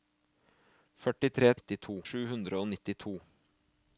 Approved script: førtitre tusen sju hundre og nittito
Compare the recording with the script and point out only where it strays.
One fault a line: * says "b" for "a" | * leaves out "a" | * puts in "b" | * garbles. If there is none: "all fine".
* says "nittito" for "tusen"